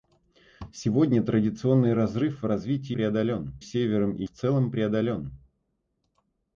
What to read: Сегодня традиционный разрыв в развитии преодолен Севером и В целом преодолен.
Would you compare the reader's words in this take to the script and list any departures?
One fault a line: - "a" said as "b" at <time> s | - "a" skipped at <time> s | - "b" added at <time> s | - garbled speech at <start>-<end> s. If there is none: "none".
none